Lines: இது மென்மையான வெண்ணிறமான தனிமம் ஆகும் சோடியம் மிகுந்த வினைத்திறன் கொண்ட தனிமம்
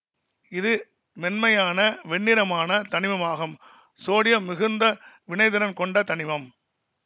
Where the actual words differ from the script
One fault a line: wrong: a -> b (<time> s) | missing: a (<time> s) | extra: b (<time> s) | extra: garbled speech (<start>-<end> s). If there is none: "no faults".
no faults